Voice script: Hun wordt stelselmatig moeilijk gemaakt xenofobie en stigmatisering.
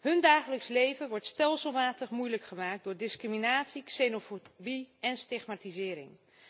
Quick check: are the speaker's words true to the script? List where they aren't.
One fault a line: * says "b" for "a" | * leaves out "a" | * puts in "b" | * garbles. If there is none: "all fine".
* puts in "dagelijks leven"
* puts in "door discriminatie"